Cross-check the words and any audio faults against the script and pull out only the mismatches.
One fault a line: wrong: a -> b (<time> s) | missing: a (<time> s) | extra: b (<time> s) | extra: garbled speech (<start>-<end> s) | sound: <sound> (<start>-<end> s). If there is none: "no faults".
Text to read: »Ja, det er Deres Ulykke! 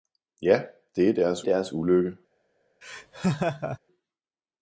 extra: Deres (1.4 s)
sound: laugh (2.8-3.8 s)